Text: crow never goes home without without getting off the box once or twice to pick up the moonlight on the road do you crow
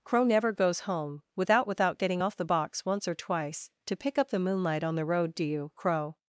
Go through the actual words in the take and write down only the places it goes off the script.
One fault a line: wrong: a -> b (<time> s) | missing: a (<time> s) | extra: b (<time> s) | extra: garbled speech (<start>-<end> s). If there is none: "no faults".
no faults